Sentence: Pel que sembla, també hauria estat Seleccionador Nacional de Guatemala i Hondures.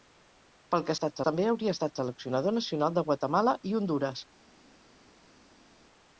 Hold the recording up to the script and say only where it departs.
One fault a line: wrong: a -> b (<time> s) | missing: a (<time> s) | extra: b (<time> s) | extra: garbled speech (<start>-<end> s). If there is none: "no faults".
wrong: sembla -> estat (1.0 s)